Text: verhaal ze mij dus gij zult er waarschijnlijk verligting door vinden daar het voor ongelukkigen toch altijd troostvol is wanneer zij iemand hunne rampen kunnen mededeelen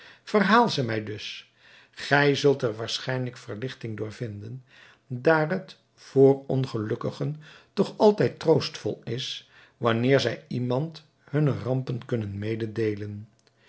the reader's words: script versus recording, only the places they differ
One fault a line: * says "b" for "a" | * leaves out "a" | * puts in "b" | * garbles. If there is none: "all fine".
all fine